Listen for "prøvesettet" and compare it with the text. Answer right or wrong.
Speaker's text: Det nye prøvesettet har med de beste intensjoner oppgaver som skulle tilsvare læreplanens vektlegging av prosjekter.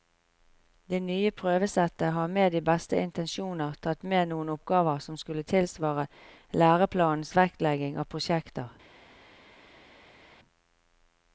right